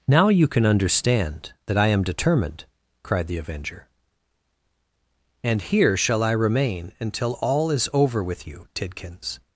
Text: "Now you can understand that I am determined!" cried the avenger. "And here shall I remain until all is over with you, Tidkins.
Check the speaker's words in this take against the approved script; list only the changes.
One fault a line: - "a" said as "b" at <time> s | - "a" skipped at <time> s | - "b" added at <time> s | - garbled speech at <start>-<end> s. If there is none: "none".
none